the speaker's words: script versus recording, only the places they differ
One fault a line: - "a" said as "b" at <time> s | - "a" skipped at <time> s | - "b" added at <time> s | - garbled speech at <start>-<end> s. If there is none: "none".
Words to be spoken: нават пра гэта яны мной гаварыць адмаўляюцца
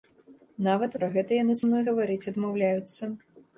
none